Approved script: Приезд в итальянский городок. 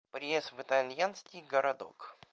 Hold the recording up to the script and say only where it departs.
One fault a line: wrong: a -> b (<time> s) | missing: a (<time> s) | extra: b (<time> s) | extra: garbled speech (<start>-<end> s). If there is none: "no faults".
no faults